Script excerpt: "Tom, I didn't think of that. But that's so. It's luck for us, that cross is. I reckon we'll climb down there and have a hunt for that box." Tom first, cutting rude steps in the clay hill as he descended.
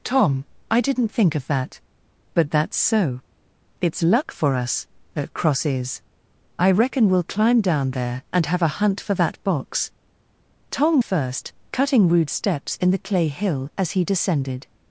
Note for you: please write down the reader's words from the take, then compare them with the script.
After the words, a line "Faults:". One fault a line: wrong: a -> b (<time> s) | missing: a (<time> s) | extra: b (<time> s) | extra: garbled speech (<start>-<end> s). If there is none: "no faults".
"Tom, I didn't think of that. But that's so. It's luck for us, that cross is. I reckon we'll climb down there and have a hunt for that box." Tom first, cutting rude steps in the clay hill as he descended.
Faults:
no faults